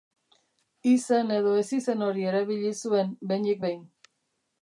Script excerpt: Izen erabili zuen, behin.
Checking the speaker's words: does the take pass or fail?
fail